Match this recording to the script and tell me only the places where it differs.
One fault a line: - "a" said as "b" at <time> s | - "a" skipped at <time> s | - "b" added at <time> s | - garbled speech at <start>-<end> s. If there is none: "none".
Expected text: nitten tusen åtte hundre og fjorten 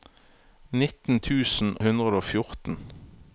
- "åtte" skipped at 1.7 s